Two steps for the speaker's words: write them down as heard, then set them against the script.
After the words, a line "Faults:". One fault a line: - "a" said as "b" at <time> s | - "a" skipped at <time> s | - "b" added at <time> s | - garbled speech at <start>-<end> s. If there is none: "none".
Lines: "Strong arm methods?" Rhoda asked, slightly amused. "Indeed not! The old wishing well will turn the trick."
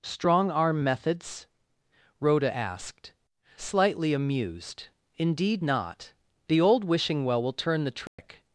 "Strong arm methods?" Rhoda asked, slightly amused. "Indeed not! The old wishing well will turn the trick."
Faults:
none